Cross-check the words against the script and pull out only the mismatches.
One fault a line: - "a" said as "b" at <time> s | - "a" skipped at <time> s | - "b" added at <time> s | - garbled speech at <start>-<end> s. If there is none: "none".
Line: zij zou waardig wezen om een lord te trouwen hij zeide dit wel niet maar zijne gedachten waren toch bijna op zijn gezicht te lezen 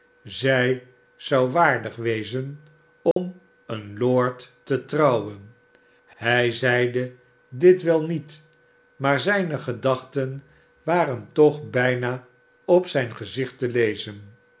none